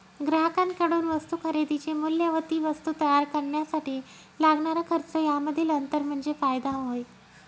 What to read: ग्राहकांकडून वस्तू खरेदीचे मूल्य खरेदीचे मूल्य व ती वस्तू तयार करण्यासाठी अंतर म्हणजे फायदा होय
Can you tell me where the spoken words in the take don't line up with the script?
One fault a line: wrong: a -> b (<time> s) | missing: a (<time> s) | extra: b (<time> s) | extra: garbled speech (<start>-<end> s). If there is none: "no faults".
missing: खरेदीचे मूल्य (2.3 s)
extra: लागणारा खर्च यामधील (4.4 s)